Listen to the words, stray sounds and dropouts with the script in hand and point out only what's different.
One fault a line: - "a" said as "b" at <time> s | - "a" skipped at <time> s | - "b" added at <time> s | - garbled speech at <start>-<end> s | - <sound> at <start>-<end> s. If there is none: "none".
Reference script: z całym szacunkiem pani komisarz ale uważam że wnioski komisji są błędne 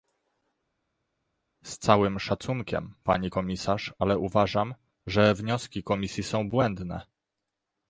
none